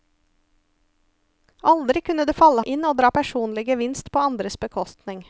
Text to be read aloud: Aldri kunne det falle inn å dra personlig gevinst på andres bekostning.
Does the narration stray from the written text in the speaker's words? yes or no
no